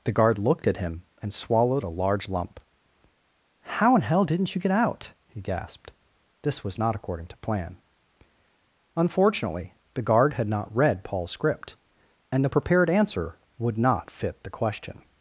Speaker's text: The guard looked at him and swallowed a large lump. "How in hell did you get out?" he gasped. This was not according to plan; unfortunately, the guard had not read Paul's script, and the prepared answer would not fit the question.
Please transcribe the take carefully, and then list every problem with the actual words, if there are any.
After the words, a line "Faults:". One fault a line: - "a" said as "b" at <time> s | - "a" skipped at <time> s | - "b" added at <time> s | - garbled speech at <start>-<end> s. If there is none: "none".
The guard looked at him and swallowed a large lump. "How in hell didn't you get out?" he gasped. This was not according to plan; unfortunately, the guard had not read Paul's script, and the prepared answer would not fit the question.
Faults:
- "did" said as "didn't" at 4.2 s